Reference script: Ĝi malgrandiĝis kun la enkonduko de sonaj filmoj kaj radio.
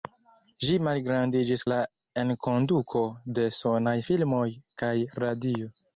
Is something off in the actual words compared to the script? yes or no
yes